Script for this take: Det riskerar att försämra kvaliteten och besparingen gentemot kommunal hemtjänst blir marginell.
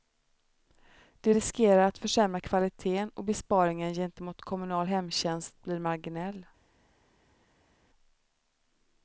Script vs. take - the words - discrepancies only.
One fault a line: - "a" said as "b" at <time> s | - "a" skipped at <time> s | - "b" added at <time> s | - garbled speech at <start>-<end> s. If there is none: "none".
none